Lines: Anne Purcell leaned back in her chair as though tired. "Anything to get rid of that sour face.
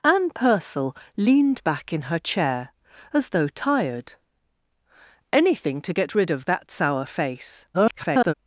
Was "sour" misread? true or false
false